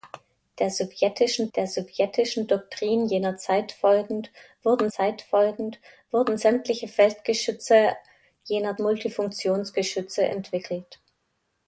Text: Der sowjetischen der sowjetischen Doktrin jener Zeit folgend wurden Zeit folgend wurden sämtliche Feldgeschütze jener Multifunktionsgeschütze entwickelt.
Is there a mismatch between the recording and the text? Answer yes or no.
no